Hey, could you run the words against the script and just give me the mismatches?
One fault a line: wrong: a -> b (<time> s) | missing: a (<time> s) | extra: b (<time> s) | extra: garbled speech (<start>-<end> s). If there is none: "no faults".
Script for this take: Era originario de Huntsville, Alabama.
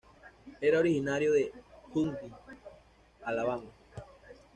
no faults